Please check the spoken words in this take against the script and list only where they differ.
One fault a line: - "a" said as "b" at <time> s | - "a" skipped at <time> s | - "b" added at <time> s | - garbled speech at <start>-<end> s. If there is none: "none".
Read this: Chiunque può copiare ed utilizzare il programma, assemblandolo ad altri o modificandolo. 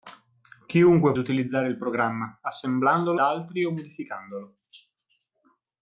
- "può copiare ed" skipped at 1.1 s
- "ad" skipped at 3.2 s